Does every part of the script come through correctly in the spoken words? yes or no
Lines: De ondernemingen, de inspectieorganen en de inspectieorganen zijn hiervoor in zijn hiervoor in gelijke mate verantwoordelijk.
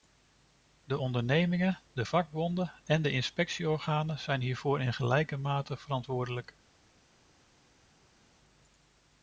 no